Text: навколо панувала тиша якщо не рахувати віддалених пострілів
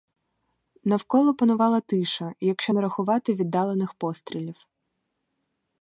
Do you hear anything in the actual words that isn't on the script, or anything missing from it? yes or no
no